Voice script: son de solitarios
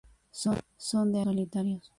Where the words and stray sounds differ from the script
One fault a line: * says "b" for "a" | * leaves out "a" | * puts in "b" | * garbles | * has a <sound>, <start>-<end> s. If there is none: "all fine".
all fine